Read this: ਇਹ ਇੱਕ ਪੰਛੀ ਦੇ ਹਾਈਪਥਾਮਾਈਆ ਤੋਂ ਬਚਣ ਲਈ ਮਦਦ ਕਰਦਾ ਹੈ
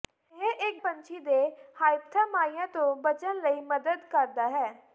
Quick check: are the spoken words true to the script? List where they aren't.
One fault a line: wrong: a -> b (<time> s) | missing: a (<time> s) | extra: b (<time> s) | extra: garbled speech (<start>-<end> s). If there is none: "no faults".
no faults